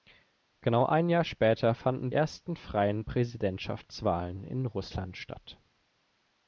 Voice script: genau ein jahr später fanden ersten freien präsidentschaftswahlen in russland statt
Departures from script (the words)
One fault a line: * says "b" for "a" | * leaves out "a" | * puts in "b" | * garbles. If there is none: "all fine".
all fine